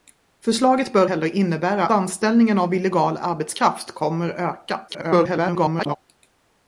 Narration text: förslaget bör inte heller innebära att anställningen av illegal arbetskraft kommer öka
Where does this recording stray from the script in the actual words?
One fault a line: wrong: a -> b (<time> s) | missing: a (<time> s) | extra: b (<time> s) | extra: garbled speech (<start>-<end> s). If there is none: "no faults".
missing: inte (1.1 s)
missing: att (1.9 s)
extra: garbled speech (4.9-6.0 s)